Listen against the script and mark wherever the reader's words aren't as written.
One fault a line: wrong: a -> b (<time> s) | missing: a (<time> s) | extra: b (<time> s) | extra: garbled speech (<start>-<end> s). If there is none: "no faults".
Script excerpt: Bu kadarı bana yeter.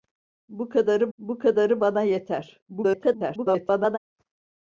extra: bu kadarı (1.2 s)
extra: garbled speech (2.7-4.0 s)